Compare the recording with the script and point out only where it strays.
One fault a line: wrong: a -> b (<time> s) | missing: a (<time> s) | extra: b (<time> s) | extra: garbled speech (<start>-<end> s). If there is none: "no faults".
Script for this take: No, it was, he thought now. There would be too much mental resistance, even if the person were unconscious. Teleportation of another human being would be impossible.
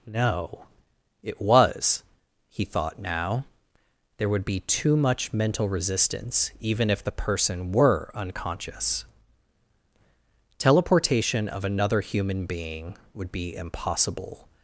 no faults